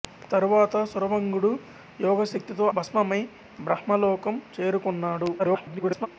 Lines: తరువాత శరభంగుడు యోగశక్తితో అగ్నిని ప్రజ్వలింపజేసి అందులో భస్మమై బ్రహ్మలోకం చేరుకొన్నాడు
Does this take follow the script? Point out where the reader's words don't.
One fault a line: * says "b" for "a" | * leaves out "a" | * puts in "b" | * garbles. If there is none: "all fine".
* leaves out "అగ్నిని ప్రజ్వలింపజేసి అందులో"
* garbles